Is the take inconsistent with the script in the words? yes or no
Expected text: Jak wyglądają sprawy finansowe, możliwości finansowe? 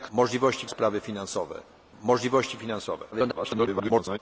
yes